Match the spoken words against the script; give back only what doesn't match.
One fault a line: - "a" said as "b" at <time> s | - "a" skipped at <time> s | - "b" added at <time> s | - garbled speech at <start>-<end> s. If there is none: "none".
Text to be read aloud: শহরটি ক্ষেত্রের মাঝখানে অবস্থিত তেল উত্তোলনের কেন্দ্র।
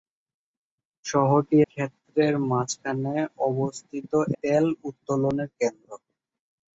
none